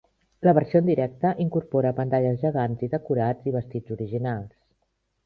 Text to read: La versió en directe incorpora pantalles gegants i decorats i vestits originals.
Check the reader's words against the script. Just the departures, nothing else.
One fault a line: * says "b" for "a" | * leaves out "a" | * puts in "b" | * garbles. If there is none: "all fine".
all fine